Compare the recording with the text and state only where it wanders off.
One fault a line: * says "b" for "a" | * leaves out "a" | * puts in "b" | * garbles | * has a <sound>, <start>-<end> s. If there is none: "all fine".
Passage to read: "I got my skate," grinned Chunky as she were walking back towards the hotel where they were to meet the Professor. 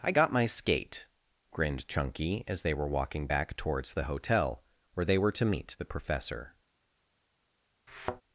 * says "they" for "she"
* has a thud, 7.9-8.2 s